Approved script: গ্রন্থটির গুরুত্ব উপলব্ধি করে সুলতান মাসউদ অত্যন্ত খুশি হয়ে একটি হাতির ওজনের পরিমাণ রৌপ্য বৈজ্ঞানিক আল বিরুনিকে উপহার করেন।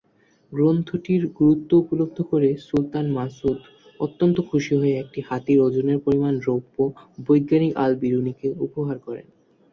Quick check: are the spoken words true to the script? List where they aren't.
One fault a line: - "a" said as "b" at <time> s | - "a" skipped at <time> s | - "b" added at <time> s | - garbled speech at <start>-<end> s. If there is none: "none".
none